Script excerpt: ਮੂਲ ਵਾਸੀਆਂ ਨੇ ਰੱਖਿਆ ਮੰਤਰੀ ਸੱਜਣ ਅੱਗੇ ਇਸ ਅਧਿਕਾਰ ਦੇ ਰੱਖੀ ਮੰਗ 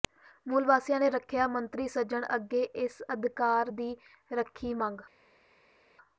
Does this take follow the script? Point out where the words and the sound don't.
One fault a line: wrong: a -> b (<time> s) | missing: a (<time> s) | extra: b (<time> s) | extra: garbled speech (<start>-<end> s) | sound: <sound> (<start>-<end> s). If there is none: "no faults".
wrong: ਦੇ -> ਦੀ (3.7 s)